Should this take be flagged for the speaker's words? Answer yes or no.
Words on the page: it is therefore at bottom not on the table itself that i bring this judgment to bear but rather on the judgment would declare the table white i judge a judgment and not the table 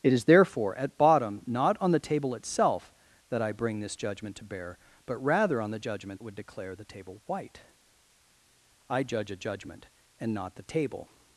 no